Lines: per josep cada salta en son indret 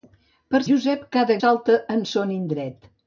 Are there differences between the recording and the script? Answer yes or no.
no